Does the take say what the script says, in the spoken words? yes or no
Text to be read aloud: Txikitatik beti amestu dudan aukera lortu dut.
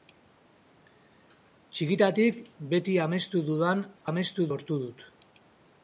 no